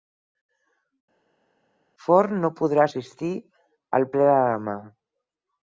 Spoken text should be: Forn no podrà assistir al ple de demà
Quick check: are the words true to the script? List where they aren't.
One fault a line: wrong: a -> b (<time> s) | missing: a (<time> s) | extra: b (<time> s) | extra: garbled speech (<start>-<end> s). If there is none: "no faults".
no faults